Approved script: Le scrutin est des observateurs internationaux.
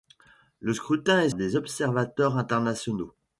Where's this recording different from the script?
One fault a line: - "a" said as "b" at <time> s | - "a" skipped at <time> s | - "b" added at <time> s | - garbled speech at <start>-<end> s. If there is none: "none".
none